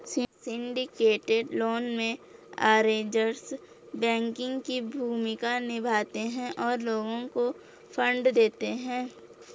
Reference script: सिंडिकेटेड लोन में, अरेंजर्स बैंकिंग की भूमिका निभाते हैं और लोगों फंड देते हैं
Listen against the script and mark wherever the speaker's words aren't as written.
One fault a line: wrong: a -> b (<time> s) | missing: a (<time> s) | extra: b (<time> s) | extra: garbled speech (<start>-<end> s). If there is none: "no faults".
extra: को (7.3 s)